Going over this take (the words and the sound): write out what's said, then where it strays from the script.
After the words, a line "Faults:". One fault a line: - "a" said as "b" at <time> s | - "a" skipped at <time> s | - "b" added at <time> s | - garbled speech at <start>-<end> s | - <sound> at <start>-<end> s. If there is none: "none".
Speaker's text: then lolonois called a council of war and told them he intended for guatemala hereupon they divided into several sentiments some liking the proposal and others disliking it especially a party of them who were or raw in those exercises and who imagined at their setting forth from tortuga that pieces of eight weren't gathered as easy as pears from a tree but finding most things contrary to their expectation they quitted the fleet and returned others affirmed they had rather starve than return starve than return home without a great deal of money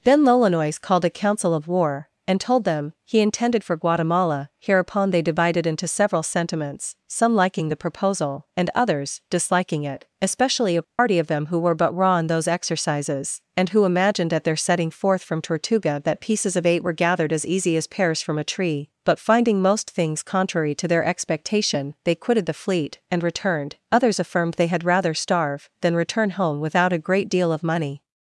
then lolonois called a council of war and told them he intended for guatemala hereupon they divided into several sentiments some liking the proposal and others disliking it especially a party of them who were but raw in those exercises and who imagined at their setting forth from tortuga that pieces of eight were gathered as easy as pears from a tree but finding most things contrary to their expectation they quitted the fleet and returned others affirmed they had rather starve than return home without a great deal of money
Faults:
- dropout at 10.8-11.0 s
- "or" said as "but" at 11.8 s
- "weren't" said as "were" at 16.8 s
- "starve than return" skipped at 26.3 s